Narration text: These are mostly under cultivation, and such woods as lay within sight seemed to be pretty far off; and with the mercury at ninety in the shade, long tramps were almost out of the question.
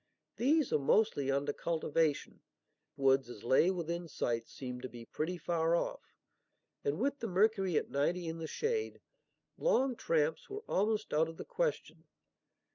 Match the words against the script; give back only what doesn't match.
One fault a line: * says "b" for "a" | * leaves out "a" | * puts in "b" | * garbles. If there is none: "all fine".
* leaves out "and such"